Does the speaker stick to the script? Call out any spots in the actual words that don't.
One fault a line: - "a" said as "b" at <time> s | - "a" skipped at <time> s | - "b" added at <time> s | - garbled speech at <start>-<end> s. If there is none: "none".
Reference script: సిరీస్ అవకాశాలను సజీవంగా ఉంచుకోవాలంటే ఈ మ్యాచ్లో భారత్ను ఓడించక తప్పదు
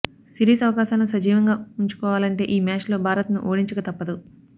none